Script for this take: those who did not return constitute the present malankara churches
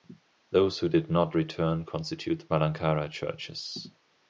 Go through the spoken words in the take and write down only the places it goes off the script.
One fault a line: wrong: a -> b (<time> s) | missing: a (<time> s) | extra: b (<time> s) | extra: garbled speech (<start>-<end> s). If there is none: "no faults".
missing: present (2.5 s)